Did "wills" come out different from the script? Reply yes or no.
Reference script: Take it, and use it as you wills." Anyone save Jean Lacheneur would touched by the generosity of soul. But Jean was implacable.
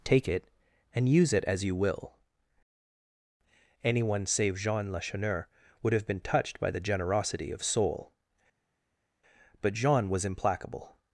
yes